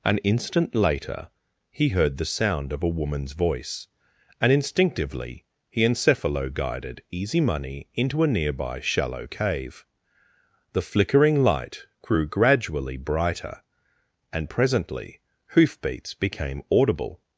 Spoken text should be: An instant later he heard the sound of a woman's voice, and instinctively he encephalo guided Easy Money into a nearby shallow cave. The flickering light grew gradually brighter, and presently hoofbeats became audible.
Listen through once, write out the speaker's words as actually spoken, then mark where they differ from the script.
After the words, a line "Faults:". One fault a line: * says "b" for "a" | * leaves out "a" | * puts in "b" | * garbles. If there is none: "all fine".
An instant later he heard the sound of a woman's voice, and instinctively he encephalo guided Easy Money into a nearby shallow cave. The flickering light grew gradually brighter, and presently hoofbeats became audible.
Faults:
all fine